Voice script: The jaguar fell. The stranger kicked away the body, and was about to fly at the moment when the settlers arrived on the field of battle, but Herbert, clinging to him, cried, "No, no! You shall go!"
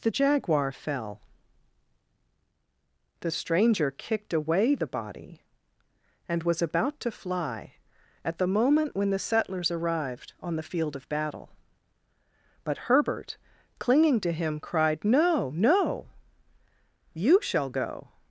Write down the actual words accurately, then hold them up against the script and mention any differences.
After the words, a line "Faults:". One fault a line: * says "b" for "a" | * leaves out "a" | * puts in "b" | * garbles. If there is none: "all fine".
The jaguar fell. The stranger kicked away the body, and was about to fly at the moment when the settlers arrived on the field of battle, but Herbert, clinging to him, cried, "No, no! You shall go!"
Faults:
all fine